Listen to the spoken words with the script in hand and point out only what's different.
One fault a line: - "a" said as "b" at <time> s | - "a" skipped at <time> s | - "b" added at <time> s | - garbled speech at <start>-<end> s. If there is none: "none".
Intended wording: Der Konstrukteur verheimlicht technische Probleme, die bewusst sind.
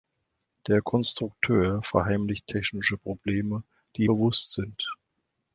none